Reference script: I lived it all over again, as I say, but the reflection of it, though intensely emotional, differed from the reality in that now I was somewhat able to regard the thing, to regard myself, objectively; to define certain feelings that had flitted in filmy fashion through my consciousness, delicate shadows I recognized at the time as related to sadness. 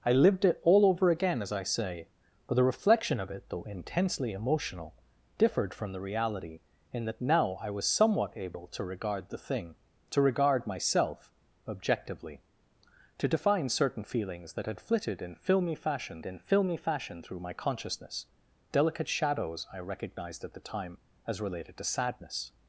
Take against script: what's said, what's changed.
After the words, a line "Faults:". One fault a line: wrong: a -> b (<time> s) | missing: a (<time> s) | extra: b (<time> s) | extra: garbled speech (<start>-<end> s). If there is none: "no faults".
I lived it all over again, as I say, but the reflection of it, though intensely emotional, differed from the reality in that now I was somewhat able to regard the thing, to regard myself, objectively; to define certain feelings that had flitted in filmy fashion in filmy fashion through my consciousness, delicate shadows I recognized at the time as related to sadness.
Faults:
extra: in filmy fashion (16.3 s)